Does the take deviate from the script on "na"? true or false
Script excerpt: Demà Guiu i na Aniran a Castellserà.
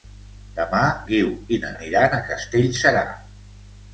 false